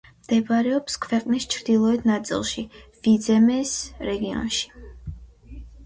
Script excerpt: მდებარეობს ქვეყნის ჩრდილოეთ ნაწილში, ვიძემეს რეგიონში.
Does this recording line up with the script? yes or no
yes